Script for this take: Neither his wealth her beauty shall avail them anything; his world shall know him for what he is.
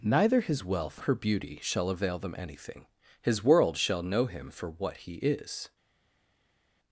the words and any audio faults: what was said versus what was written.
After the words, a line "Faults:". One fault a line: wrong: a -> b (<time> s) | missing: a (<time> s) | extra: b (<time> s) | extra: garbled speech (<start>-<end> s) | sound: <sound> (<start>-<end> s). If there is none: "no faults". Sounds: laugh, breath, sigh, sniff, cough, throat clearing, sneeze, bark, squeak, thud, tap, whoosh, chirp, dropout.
Neither his wealth her beauty shall avail them anything; his world shall know him for what he is.
Faults:
no faults